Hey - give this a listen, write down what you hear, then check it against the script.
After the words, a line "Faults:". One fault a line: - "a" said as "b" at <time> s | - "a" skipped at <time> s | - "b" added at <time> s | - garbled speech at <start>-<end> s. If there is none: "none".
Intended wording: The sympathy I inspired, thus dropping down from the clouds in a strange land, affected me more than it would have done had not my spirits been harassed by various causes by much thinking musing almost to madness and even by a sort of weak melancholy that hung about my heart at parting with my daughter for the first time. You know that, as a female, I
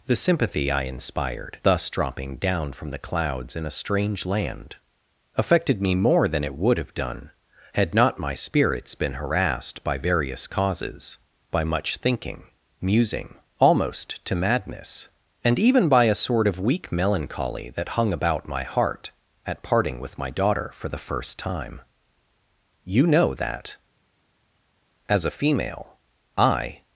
The sympathy I inspired, thus dropping down from the clouds in a strange land, affected me more than it would have done had not my spirits been harassed by various causes by much thinking musing almost to madness and even by a sort of weak melancholy that hung about my heart at parting with my daughter for the first time. You know that, as a female, I
Faults:
none